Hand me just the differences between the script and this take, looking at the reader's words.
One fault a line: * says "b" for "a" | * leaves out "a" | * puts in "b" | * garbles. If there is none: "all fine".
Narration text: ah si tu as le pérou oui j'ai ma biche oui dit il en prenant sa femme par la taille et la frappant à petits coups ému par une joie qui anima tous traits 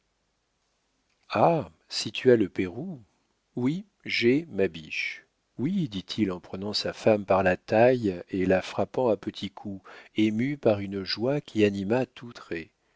all fine